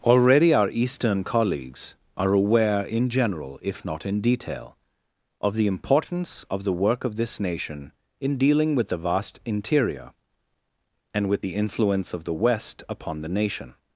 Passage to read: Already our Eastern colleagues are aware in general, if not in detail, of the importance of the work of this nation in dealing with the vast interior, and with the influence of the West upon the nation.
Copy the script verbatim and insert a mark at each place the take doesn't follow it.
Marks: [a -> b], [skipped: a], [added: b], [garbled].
Already our Eastern colleagues are aware in general, if not in detail, of the importance of the work of this nation in dealing with the vast interior, and with the influence of the West upon the nation.